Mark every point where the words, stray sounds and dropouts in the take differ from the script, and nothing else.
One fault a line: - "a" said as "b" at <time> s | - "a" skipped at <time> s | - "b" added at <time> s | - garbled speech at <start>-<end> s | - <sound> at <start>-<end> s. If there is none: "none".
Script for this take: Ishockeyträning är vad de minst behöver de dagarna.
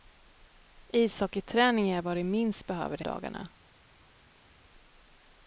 none